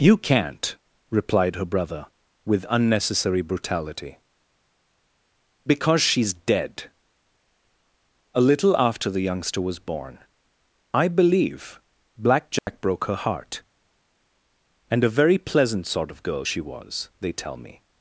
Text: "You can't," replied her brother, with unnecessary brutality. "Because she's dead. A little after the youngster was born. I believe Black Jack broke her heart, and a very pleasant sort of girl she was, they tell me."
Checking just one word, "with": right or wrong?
right